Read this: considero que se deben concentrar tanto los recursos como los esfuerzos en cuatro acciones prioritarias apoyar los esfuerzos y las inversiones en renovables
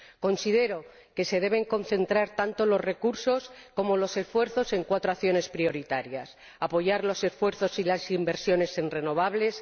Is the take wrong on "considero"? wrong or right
right